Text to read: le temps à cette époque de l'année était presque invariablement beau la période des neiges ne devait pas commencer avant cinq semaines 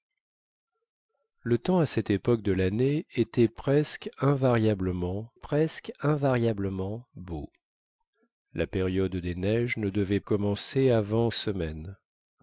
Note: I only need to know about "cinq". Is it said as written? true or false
false